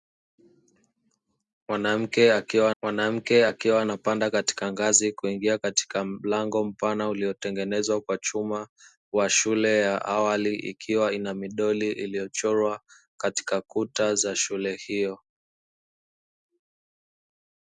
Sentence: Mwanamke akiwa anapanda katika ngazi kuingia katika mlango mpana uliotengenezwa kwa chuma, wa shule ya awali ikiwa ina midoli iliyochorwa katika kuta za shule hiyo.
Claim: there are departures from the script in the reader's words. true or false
true